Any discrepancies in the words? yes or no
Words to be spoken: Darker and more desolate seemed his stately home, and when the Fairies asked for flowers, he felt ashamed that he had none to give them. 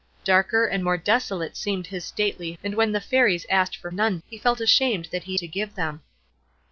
yes